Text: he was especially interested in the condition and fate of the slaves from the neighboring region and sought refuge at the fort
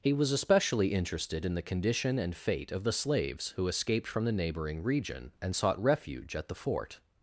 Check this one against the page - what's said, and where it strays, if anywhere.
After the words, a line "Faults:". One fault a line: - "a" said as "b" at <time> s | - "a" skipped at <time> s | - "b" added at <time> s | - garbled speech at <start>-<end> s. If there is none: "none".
he was especially interested in the condition and fate of the slaves who escaped from the neighboring region and sought refuge at the fort
Faults:
- "who escaped" added at 3.5 s